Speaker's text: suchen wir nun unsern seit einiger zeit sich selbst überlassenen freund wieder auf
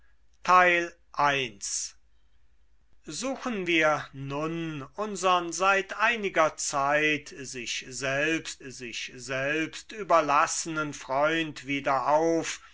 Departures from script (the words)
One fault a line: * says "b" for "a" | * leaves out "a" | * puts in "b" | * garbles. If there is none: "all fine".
* puts in "sich selbst"